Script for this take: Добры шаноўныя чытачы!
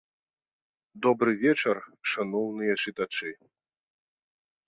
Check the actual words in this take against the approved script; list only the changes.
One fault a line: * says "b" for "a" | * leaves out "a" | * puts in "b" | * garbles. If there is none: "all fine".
* puts in "вечар"